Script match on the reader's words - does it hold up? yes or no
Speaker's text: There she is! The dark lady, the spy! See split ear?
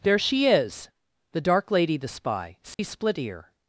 yes